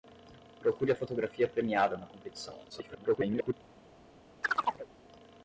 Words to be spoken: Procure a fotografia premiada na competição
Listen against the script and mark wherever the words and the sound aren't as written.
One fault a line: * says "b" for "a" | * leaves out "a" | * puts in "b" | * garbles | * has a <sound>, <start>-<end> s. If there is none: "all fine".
* garbles
* has a chirp, 4.4-4.9 s